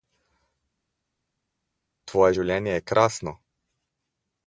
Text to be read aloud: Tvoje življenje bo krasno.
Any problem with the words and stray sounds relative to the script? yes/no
yes